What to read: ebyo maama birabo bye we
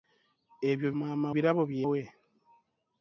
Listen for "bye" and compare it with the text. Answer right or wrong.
right